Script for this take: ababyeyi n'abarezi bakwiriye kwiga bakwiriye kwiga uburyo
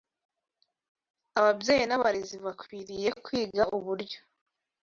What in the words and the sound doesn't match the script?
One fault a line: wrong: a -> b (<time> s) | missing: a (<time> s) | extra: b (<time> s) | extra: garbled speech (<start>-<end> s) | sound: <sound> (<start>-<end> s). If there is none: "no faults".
missing: bakwiriye kwiga (3.6 s)